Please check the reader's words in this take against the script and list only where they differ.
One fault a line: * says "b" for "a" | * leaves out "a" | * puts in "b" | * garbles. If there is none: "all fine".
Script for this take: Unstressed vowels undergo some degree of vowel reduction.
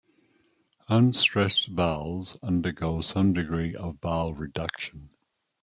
all fine